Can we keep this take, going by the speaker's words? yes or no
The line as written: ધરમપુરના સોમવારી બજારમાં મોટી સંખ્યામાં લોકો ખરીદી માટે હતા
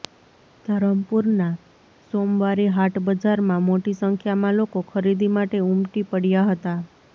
no